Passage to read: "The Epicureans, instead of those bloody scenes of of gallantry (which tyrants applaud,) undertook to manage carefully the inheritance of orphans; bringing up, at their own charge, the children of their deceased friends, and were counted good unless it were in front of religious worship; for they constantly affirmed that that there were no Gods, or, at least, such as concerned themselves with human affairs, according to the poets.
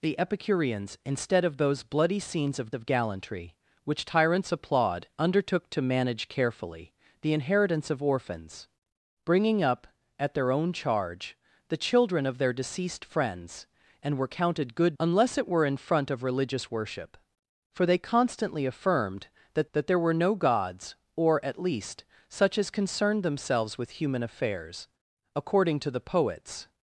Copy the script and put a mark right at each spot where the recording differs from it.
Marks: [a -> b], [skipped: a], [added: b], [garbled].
"The Epicureans, instead of those bloody scenes of of gallantry (which tyrants applaud,) undertook to manage carefully the inheritance of orphans; bringing up, at their own charge, the children of their deceased friends, and were counted good unless it were in front of religious worship; for they constantly affirmed that that there were no Gods, or, at least, such as concerned themselves with human affairs, according to the poets.